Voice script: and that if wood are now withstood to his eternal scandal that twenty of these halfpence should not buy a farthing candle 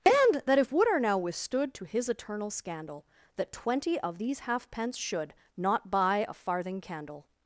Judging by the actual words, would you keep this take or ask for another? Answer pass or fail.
pass